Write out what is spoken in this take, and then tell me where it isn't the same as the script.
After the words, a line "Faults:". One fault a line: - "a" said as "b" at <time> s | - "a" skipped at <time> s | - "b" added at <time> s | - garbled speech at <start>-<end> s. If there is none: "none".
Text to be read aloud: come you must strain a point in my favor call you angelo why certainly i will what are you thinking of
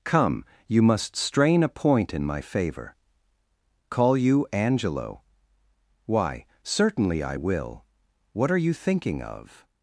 come you must strain a point in my favor call you angelo why certainly i will what are you thinking of
Faults:
none